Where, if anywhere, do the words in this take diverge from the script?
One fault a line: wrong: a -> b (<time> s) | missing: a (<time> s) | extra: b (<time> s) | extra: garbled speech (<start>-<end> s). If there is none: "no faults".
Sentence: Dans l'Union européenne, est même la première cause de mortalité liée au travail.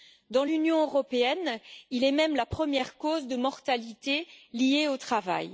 extra: il (1.9 s)